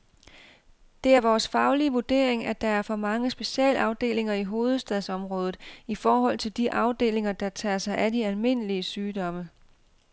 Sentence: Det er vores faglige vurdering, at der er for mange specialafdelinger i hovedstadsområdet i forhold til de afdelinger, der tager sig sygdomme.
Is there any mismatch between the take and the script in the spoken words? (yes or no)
yes